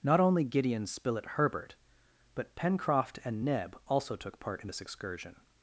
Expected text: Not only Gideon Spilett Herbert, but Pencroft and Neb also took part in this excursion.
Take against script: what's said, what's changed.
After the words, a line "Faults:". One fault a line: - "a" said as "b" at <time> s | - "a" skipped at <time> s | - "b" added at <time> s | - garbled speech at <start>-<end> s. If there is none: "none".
Not only Gideon Spilett Herbert, but Pencroft and Neb also took part in this excursion.
Faults:
none